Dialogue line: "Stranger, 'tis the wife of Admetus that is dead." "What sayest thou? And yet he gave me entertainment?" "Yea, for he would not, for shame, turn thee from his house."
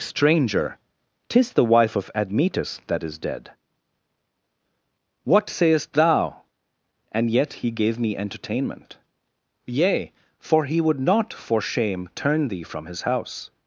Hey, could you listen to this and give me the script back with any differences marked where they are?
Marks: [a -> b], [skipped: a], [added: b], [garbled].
"Stranger, 'tis the wife of Admetus that is dead." "What sayest thou? And yet he gave me entertainment?" "Yea, for he would not, for shame, turn thee from his house."